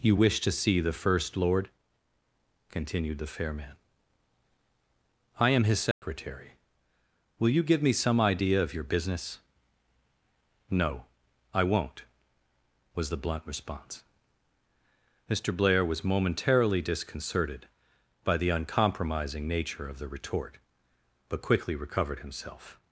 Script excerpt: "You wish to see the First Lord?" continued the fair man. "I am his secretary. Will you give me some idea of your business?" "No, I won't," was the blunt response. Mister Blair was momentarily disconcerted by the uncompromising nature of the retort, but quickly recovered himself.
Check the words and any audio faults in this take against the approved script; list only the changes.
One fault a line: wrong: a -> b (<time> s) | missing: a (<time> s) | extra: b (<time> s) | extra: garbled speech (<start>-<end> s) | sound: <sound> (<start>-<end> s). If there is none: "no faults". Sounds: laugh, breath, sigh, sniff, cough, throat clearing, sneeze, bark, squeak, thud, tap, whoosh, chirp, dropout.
sound: dropout (5.9-6.0 s)